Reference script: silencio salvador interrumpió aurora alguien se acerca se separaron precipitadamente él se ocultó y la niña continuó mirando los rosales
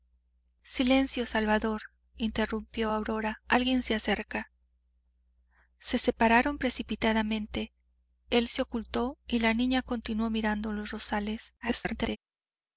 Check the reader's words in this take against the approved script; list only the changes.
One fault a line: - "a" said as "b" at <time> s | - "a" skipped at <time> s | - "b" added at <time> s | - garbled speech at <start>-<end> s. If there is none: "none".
- garbled speech at 11.6-12.2 s